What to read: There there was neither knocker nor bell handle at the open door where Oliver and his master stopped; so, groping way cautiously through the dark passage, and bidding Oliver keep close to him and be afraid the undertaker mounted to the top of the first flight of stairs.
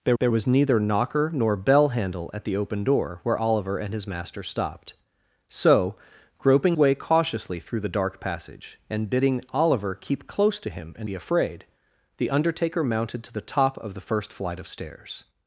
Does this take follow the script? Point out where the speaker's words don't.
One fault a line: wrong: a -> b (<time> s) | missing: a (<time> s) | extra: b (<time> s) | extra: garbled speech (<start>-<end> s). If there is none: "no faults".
no faults